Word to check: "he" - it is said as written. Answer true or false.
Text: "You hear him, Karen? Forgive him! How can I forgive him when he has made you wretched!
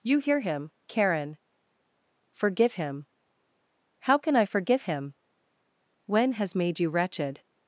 false